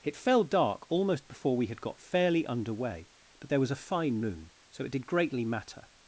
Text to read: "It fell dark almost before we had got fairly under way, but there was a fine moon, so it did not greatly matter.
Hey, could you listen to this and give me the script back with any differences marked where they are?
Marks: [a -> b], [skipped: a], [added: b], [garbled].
"It fell dark almost before we had got fairly under way, but there was a fine moon, so it did [skipped: not] greatly matter.